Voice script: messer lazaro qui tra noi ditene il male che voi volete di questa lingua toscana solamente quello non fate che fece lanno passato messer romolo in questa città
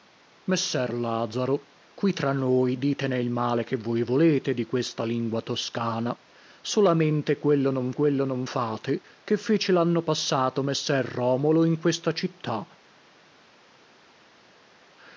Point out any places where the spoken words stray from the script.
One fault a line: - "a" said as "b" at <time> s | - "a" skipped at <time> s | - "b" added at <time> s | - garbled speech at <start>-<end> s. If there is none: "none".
- "quello non" added at 7.9 s